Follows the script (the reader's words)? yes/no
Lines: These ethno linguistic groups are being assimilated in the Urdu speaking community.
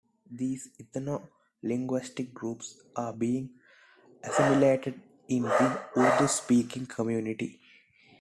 yes